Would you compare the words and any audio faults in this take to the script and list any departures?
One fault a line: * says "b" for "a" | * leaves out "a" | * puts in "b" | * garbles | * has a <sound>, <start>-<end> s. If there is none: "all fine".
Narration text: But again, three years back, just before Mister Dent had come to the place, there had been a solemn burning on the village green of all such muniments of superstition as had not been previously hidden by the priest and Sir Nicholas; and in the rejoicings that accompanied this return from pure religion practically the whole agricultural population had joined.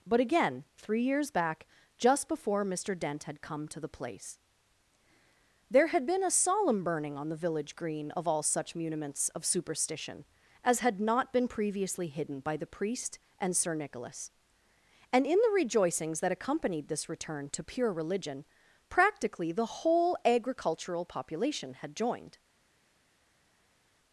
* says "to" for "from"